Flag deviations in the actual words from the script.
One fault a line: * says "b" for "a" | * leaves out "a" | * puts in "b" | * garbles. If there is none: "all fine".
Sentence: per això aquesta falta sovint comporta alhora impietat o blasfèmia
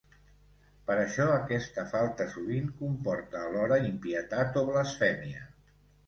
all fine